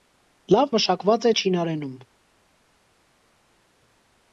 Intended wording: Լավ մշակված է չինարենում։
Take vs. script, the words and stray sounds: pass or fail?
pass